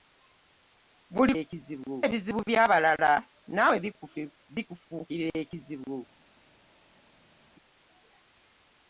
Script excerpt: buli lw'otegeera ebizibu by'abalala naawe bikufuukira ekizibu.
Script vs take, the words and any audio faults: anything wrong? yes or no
yes